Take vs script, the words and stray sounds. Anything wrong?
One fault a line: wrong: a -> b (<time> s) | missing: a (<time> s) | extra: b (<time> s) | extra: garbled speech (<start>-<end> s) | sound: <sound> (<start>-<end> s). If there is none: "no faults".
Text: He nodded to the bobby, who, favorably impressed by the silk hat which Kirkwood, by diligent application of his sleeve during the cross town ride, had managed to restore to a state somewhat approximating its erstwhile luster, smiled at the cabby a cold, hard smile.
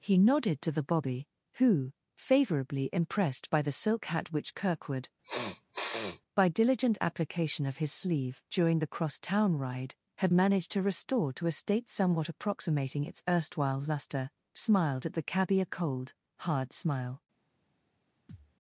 sound: sniff (5.2-6.2 s)
sound: thud (18.3-18.6 s)